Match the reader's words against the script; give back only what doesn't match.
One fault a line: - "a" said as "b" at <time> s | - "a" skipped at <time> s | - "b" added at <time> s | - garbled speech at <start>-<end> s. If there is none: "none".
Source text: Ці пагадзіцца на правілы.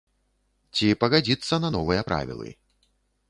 - "новыя" added at 1.8 s